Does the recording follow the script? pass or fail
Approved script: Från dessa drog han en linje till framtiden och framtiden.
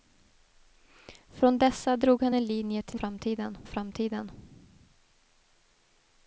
pass